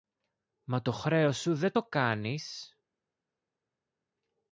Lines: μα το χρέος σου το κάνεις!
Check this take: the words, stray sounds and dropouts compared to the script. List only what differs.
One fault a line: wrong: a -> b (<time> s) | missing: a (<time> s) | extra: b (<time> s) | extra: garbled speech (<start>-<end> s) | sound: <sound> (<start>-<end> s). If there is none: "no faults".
extra: δεν (1.5 s)